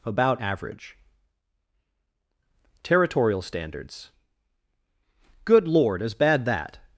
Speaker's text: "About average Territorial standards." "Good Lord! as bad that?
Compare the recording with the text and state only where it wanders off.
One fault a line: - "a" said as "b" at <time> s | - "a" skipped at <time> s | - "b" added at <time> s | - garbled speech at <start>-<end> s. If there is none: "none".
none